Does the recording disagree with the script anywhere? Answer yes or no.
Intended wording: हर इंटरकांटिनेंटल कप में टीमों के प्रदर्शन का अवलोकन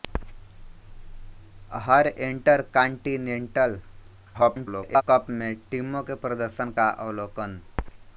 yes